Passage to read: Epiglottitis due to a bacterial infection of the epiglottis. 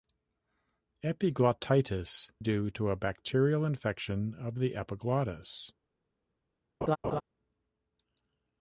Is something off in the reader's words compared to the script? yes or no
no